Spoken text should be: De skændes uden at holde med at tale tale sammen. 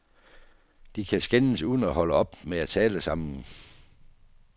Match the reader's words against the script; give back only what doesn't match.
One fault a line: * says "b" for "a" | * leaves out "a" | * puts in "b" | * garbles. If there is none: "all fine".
* puts in "kan"
* puts in "op"
* leaves out "tale"